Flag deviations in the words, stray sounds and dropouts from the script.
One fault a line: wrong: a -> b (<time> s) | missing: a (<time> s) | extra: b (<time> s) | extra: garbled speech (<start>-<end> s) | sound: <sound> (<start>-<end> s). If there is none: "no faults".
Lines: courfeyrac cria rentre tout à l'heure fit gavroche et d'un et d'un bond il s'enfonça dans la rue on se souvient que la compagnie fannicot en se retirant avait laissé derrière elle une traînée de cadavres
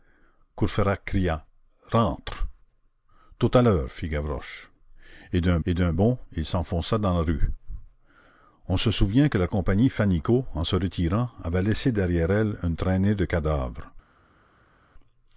no faults